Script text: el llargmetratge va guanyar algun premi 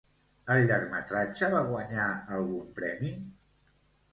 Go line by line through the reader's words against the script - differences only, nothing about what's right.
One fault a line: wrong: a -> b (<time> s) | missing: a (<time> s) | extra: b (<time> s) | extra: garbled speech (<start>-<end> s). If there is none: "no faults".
no faults